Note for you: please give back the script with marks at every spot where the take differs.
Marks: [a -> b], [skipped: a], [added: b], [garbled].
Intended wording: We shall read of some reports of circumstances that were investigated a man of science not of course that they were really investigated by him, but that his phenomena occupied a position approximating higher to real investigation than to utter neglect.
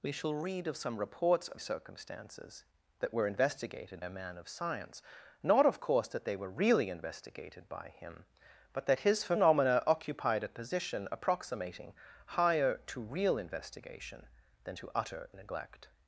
We shall read of some reports of circumstances that were investigated a man of science not of course that they were really investigated by him, but that his phenomena occupied a position approximating higher to real investigation than to utter neglect.